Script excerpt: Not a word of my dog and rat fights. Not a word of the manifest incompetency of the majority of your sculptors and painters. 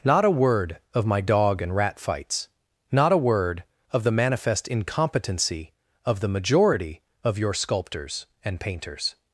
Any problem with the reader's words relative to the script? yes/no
no